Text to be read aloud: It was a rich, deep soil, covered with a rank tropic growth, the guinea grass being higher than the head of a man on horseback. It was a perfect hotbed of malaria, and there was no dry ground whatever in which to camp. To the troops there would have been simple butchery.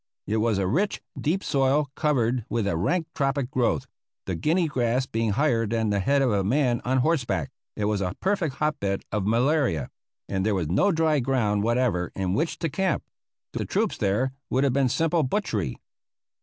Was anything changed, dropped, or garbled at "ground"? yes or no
no